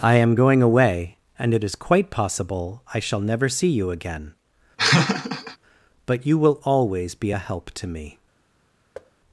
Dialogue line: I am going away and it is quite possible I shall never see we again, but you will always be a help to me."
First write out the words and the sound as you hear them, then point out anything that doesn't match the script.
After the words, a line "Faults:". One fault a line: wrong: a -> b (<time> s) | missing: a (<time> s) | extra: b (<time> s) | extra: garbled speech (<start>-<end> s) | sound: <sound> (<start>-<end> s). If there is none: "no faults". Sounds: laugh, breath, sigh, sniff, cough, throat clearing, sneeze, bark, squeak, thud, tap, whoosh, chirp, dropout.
I am going away and it is quite possible I shall never see you again, but you will always be a help to me."
Faults:
wrong: we -> you (3.7 s)
sound: laugh (4.8-5.6 s)
sound: thud (8.9-9.1 s)